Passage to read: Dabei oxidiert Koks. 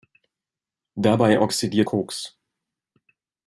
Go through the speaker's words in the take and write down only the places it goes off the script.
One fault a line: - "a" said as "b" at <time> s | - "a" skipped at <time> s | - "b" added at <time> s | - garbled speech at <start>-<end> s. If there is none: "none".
none